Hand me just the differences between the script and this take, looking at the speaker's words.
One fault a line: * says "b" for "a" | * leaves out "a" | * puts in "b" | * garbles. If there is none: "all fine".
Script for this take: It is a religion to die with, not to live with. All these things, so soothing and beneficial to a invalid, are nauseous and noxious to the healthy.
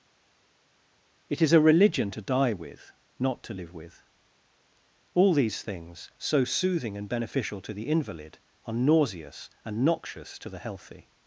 * says "the" for "a"